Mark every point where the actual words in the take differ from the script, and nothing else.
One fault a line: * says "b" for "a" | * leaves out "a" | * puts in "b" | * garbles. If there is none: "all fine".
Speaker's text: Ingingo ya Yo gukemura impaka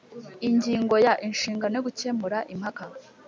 * puts in "Inshingano"